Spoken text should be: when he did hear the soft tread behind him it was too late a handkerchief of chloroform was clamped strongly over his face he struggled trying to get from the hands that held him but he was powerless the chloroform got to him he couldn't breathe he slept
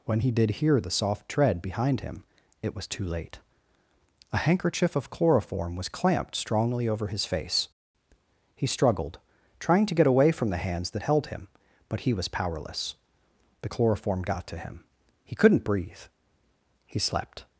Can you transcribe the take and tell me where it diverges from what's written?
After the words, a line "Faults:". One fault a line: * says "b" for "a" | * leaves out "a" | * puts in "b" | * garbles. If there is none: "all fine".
when he did hear the soft tread behind him it was too late a handkerchief of chloroform was clamped strongly over his face he struggled trying to get away from the hands that held him but he was powerless the chloroform got to him he couldn't breathe he slept
Faults:
* puts in "away"